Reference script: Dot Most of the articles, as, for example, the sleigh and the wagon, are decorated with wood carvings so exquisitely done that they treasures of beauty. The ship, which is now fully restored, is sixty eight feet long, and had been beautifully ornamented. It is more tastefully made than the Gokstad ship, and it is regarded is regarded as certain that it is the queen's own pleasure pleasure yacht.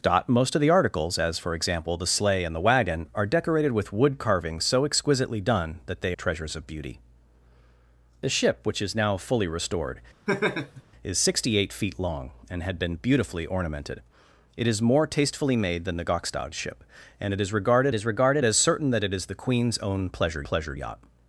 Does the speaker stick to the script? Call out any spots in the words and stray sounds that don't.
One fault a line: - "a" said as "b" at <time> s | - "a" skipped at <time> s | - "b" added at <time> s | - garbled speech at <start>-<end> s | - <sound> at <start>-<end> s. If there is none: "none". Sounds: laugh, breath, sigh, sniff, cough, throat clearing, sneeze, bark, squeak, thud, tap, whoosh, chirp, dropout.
- laugh at 10.3-10.8 s